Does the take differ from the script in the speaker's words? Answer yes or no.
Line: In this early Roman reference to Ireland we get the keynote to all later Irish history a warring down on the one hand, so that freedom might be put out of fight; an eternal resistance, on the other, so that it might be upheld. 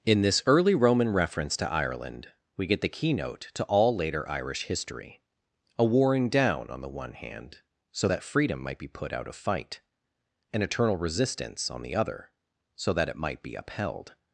no